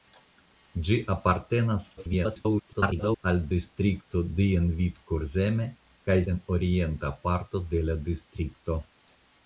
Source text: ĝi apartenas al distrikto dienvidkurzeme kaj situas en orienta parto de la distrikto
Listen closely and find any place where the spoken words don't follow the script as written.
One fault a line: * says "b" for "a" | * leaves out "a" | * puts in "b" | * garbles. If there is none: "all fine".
* garbles
* leaves out "situas"